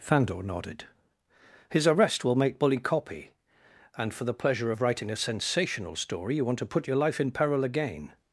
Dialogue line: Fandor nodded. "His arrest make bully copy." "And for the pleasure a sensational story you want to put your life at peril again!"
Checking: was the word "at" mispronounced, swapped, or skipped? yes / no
yes